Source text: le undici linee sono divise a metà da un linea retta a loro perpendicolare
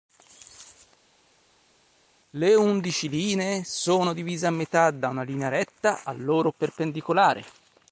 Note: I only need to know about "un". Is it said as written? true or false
false